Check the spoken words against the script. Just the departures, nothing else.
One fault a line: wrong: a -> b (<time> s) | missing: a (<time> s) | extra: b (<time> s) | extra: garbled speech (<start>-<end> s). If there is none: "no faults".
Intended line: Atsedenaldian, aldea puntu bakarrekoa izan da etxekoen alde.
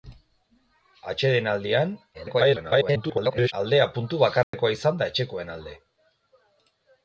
extra: garbled speech (2.1-3.5 s)